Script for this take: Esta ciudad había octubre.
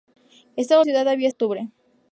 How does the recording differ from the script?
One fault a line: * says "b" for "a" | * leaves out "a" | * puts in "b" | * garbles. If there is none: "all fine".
all fine